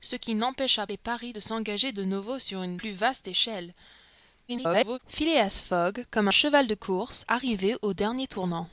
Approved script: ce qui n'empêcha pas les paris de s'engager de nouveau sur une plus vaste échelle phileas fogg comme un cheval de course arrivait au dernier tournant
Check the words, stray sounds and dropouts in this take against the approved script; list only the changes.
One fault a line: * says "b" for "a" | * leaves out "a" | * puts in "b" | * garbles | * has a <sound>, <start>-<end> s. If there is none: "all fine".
* leaves out "pas"
* garbles
* leaves out "un"